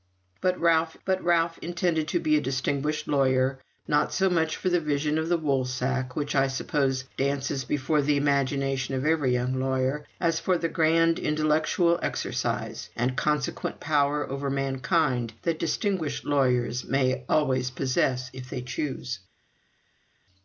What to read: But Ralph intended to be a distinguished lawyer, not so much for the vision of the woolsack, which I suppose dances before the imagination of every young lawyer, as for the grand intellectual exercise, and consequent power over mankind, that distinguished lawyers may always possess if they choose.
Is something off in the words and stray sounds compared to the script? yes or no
yes